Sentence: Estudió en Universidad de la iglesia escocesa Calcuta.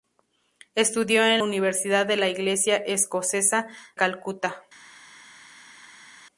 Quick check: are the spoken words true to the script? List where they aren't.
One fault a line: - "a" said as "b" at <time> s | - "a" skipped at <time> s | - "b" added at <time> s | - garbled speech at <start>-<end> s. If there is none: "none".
none